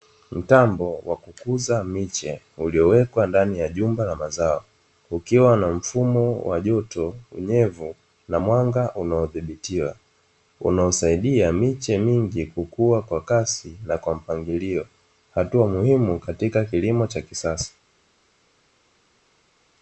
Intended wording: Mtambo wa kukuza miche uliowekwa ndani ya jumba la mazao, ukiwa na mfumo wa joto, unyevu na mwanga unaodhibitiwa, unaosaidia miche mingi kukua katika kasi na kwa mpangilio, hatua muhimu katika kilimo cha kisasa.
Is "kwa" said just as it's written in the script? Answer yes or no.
yes